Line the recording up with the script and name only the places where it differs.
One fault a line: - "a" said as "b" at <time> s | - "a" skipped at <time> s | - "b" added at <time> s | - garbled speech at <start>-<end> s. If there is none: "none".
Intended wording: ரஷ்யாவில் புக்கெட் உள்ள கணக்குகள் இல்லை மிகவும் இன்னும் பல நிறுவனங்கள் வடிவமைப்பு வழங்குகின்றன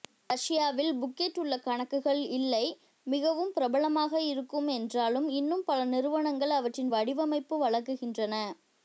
- "பிரபலமாக இருக்கும் என்றாலும்" added at 3.5 s
- "அவற்றின்" added at 6.5 s